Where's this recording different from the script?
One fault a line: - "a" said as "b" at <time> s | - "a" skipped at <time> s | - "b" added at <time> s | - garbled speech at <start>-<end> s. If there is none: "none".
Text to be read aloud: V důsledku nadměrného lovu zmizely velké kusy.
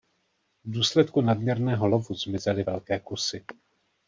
none